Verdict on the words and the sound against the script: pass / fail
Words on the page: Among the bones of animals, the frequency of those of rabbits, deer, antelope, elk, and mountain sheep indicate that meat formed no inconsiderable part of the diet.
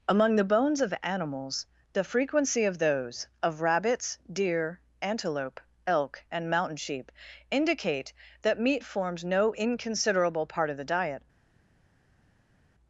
fail